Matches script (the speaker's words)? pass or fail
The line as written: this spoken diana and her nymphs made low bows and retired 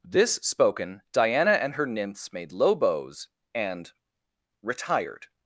pass